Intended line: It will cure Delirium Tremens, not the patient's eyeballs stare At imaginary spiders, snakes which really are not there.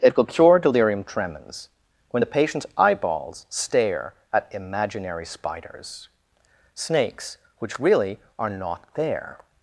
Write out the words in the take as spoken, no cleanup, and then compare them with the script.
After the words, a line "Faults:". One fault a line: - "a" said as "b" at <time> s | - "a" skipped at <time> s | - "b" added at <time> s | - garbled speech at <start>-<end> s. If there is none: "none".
It will cure Delirium Tremens, when the patient's eyeballs stare At imaginary spiders, snakes which really are not there.
Faults:
- "not" said as "when" at 2.1 s